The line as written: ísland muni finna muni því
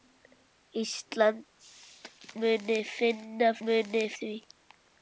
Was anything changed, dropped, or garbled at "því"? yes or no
no